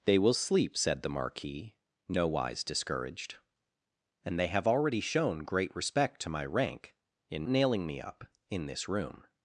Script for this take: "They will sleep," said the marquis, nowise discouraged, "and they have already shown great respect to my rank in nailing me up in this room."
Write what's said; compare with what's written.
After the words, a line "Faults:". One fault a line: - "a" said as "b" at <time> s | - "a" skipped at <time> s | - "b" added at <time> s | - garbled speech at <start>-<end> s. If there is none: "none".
"They will sleep," said the marquis, nowise discouraged, "and they have already shown great respect to my rank in nailing me up in this room."
Faults:
none